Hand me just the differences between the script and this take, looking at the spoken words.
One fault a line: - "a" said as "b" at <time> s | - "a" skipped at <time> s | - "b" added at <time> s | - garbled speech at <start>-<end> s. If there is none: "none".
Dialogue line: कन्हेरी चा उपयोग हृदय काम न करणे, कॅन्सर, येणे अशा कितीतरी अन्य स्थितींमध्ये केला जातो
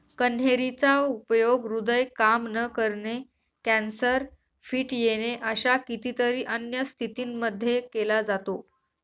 - "फिट" added at 4.7 s